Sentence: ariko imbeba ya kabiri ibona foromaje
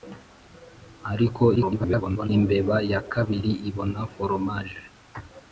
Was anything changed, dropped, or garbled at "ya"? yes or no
no